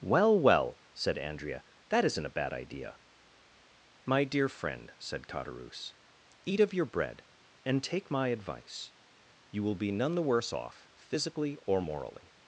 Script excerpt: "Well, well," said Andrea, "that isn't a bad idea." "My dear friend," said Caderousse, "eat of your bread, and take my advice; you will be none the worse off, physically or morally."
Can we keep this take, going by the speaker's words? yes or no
yes